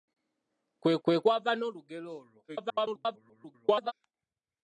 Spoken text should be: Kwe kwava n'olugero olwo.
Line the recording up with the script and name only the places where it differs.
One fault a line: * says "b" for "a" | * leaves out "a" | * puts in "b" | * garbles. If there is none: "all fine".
* puts in "kwe"
* garbles